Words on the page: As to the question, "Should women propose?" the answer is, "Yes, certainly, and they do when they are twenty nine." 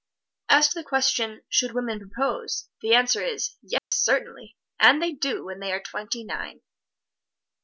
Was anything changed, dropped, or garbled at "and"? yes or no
no